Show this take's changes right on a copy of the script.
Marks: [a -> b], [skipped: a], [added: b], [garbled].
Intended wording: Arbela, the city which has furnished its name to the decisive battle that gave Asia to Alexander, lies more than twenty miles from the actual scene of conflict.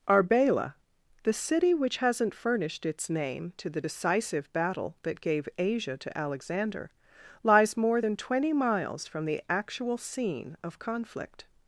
Arbela, the city which [has -> hasn't] furnished its name to the decisive battle that gave Asia to Alexander, lies more than twenty miles from the actual scene of conflict.